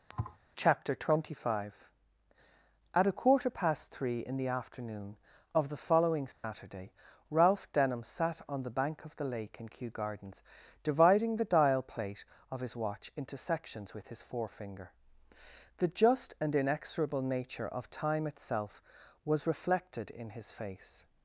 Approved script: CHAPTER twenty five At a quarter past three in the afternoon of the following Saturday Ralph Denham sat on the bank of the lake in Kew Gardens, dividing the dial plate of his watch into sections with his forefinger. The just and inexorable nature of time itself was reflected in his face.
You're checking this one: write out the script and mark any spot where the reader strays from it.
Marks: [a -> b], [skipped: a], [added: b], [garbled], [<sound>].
[thud] CHAPTER twenty five At a quarter past three in the afternoon of the following Saturday [dropout] Ralph Denham sat on the bank of the lake in Kew Gardens, dividing the dial plate of his watch into sections with his forefinger. The just and inexorable nature of time itself was reflected in his face.